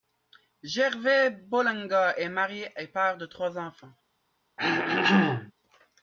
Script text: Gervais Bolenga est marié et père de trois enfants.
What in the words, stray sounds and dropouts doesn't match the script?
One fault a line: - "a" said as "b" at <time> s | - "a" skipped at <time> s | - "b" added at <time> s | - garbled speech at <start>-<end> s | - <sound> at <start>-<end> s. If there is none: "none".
- throat clearing at 4.6-5.5 s